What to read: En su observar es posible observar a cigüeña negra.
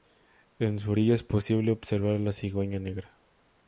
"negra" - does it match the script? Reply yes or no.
yes